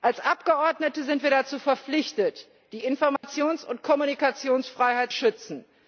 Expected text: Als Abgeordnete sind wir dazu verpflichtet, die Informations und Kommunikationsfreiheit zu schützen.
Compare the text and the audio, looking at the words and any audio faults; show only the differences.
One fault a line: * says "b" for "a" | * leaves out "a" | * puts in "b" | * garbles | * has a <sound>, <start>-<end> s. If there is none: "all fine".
* has a dropout, 3.2-3.2 s
* leaves out "zu"